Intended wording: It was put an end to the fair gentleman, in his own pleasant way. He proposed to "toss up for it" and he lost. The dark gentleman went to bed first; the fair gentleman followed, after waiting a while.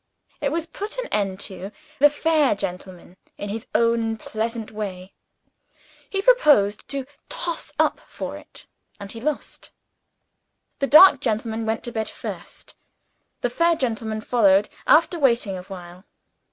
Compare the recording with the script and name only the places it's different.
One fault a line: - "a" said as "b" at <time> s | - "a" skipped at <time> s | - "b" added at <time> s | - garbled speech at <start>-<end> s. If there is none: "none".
none